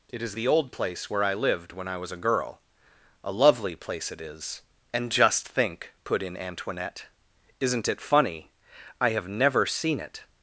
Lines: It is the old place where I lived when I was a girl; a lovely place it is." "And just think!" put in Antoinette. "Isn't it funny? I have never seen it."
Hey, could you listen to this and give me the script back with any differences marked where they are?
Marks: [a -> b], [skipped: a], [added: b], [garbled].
It is the old place where I lived when I was a girl; a lovely place it is." "And just think!" put in Antoinette. "Isn't it funny? I have never seen it."